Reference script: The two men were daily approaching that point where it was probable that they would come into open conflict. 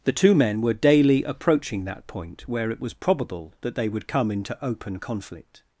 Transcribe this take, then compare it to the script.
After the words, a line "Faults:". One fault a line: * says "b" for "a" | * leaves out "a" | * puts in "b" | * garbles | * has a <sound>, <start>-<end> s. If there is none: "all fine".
The two men were daily approaching that point where it was probable that they would come into open conflict.
Faults:
all fine